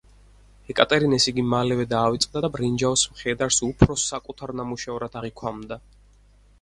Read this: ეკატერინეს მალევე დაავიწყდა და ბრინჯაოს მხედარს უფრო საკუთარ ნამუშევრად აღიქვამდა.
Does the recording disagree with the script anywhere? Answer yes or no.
yes